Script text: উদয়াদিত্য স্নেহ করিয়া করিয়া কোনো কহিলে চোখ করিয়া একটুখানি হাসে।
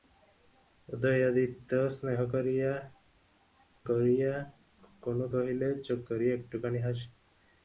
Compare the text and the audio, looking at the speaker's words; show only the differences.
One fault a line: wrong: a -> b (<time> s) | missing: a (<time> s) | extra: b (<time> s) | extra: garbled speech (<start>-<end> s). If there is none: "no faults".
no faults